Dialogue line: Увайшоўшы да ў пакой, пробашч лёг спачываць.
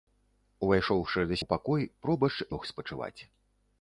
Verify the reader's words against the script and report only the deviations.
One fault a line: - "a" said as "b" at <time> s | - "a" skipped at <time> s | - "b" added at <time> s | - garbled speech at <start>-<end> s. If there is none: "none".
none